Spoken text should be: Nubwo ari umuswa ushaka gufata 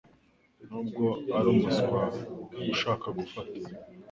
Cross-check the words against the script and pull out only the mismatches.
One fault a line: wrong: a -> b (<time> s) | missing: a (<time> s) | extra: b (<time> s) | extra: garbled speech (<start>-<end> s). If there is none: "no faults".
no faults